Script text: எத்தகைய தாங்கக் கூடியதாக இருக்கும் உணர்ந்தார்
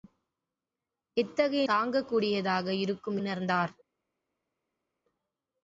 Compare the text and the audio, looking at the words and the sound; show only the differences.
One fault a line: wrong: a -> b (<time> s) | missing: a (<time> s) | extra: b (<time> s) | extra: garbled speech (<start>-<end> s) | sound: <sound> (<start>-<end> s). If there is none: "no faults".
no faults